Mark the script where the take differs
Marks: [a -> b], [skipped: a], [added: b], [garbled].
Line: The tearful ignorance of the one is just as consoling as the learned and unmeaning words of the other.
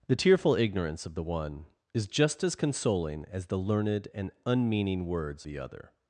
The tearful ignorance of the one is just as consoling as the learned and unmeaning words [skipped: of] the other.